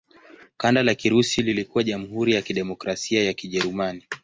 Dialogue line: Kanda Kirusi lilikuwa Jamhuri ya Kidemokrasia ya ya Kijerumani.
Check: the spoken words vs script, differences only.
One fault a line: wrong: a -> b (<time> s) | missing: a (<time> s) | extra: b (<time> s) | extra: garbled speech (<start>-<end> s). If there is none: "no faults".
extra: la (0.8 s)
missing: ya (3.3 s)